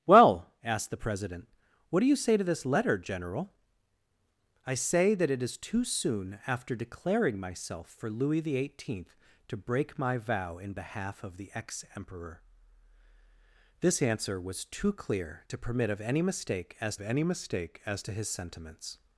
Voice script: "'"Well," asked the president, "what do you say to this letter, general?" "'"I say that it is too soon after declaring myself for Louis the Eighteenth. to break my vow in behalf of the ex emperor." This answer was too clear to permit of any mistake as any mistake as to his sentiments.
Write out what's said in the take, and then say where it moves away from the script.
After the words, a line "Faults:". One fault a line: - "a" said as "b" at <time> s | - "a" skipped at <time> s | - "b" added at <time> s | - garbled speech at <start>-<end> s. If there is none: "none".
"'"Well," asked the president, "what do you say to this letter, general?" "'"I say that it is too soon after declaring myself for Louis the Eighteenth. to break my vow in behalf of the ex emperor." This answer was too clear to permit of any mistake as any mistake as to his sentiments.
Faults:
none